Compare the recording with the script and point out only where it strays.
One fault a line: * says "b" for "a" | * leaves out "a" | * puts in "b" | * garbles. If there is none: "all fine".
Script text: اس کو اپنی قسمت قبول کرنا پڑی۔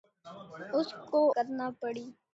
* leaves out "اپنی قسمت قبول"